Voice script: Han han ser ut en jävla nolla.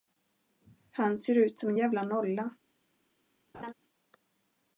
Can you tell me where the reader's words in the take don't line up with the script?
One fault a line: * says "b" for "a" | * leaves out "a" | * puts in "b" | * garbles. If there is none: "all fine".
* leaves out "han"
* puts in "som"